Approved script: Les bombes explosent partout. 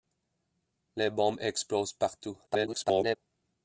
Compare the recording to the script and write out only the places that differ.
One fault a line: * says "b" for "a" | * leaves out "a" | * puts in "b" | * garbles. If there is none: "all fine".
* garbles